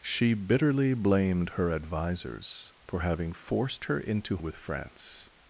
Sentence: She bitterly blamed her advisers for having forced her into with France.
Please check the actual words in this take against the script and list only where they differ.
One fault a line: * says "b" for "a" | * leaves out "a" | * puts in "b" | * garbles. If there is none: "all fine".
all fine